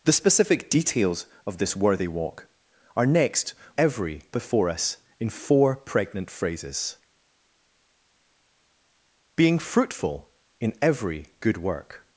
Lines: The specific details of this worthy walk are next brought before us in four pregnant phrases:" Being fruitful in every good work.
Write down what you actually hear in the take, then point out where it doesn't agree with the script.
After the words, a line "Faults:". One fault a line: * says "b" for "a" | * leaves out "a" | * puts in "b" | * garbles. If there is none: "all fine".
The specific details of this worthy walk are next every before us in four pregnant phrases:" Being fruitful in every good work.
Faults:
* says "every" for "brought"